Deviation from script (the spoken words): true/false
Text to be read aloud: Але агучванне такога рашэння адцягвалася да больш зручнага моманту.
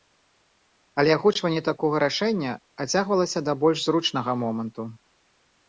false